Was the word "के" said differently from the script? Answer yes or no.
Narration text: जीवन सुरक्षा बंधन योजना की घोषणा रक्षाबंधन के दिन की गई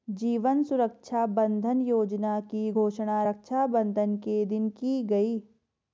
no